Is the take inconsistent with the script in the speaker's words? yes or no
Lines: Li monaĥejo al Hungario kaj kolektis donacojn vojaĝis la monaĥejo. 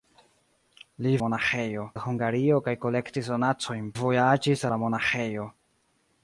no